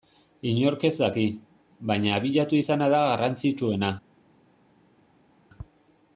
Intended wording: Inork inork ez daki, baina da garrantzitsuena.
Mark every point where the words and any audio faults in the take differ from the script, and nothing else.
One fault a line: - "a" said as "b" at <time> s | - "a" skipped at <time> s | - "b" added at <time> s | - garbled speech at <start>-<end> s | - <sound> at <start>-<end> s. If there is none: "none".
- "inork" skipped at 0.8 s
- "abiatu izana" added at 2.1 s